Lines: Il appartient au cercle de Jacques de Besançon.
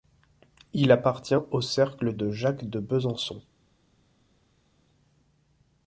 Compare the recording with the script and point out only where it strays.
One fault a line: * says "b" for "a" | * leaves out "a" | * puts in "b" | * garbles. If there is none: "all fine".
all fine